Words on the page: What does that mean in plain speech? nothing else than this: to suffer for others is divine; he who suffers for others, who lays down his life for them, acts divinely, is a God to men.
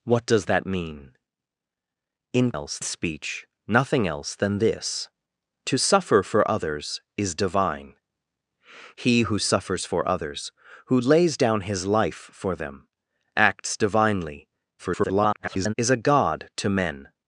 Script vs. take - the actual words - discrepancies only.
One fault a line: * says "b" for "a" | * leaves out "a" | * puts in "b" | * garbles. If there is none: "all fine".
* says "else" for "plain"
* garbles